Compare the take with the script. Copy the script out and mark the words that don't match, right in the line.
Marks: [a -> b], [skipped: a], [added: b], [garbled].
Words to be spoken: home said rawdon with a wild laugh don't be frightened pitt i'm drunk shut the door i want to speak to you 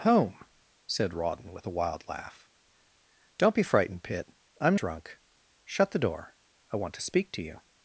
home said rawdon with a wild laugh don't be frightened pitt i'm drunk shut the door i want to speak to you